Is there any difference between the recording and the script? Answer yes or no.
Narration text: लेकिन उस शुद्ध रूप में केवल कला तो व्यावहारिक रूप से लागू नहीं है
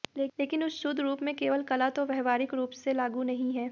no